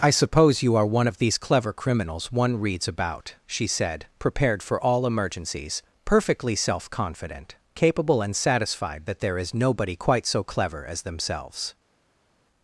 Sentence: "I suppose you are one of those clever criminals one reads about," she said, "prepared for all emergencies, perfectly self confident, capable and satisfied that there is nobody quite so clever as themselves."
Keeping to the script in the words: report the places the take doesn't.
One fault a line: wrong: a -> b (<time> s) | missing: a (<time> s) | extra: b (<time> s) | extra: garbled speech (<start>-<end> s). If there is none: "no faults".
wrong: those -> these (1.2 s)